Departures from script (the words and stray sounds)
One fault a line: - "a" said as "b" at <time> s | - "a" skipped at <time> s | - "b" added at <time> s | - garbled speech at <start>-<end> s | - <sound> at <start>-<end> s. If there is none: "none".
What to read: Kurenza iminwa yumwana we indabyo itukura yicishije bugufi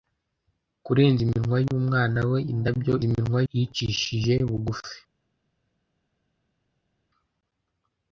- "itukura" said as "iminwa" at 3.1 s